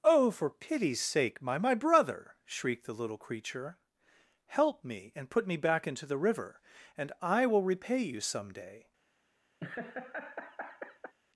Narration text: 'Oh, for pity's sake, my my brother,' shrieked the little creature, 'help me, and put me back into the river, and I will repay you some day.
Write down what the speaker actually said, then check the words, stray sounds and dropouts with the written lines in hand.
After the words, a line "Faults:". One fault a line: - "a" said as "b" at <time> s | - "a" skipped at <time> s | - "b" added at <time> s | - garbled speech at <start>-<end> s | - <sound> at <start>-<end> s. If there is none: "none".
'Oh, for pity's sake, my my brother,' shrieked the little creature, 'help me, and put me back into the river, and I will repay you some day.
Faults:
- laugh at 9.6-11.1 s